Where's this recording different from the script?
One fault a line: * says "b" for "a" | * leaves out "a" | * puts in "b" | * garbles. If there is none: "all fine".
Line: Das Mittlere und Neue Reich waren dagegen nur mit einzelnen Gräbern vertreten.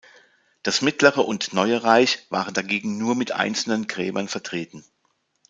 all fine